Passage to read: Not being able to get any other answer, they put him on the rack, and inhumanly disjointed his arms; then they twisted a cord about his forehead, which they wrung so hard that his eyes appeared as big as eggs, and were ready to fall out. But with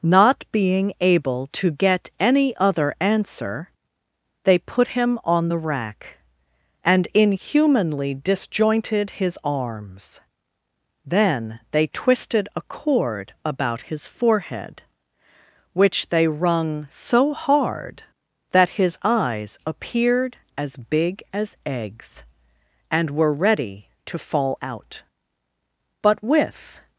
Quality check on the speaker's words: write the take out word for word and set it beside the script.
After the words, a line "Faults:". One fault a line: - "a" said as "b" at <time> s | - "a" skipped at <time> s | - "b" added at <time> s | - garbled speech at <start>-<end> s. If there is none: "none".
Not being able to get any other answer, they put him on the rack, and inhumanly disjointed his arms; then they twisted a cord about his forehead, which they wrung so hard that his eyes appeared as big as eggs, and were ready to fall out. But with
Faults:
none